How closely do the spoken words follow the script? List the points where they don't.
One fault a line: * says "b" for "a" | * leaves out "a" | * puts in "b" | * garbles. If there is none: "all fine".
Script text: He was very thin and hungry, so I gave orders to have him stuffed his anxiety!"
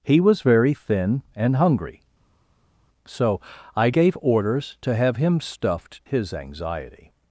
all fine